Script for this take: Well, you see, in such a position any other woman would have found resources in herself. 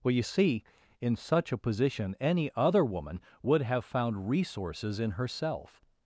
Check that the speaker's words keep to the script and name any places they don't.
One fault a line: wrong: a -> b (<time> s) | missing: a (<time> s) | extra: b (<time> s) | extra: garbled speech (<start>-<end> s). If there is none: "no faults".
no faults